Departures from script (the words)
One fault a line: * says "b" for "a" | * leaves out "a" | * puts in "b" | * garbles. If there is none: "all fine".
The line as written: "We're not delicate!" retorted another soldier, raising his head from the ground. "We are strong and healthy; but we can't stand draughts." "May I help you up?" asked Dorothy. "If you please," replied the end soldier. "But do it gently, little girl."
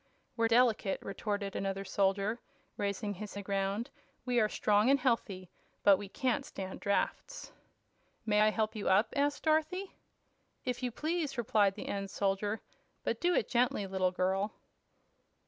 * leaves out "not"
* leaves out "head from"